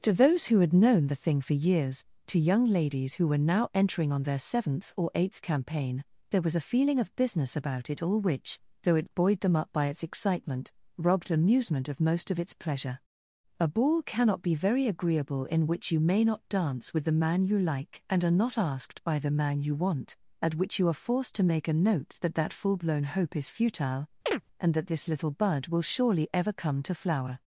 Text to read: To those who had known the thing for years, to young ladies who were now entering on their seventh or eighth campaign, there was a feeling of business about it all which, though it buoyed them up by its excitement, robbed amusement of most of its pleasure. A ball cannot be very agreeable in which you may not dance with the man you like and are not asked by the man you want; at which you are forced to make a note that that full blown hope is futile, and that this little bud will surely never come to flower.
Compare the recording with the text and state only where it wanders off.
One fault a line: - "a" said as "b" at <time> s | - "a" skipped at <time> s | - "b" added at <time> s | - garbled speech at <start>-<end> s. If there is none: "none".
- "never" said as "ever" at 26.3 s